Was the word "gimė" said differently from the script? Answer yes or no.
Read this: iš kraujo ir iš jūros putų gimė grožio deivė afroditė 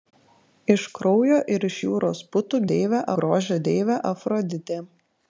yes